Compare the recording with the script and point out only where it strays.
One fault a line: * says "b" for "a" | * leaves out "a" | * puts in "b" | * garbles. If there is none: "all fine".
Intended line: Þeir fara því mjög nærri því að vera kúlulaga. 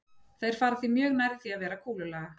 all fine